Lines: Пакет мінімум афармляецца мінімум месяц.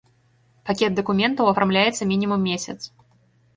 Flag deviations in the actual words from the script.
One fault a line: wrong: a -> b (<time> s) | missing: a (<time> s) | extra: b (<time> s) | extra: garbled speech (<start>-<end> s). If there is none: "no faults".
wrong: мінімум -> дакументаў (1.0 s)